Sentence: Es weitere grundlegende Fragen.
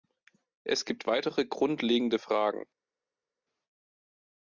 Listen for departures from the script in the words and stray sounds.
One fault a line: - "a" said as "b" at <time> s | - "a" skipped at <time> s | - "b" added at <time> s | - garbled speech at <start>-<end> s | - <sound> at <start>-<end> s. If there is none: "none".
- "gibt" added at 0.8 s